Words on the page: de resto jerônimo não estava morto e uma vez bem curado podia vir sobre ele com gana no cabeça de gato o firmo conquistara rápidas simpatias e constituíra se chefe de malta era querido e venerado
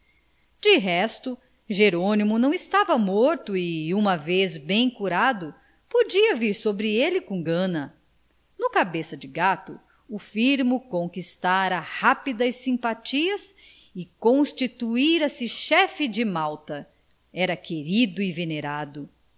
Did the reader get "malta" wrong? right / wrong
right